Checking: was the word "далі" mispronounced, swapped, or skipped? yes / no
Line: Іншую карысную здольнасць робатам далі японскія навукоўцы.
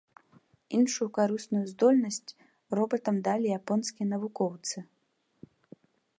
no